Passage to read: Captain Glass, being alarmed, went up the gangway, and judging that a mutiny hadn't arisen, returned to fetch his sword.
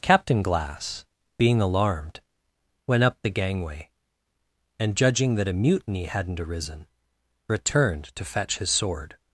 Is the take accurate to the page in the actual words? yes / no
yes